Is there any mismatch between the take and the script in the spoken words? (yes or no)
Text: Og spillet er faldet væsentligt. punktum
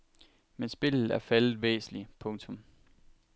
yes